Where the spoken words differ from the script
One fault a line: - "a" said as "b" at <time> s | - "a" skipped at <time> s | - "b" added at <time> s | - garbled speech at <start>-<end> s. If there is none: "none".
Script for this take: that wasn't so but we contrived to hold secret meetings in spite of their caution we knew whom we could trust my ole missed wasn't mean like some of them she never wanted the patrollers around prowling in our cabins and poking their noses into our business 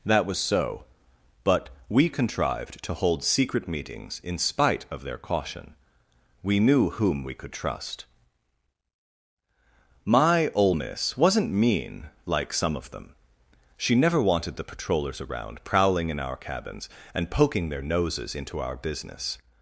- "wasn't" said as "was" at 0.2 s
- "missed" said as "miss" at 10.7 s